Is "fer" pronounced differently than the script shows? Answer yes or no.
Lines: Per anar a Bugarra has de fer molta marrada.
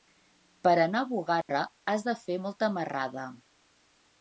no